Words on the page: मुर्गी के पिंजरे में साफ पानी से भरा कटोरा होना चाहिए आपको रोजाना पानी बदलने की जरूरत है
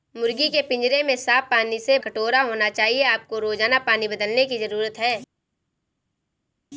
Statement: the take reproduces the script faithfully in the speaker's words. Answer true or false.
false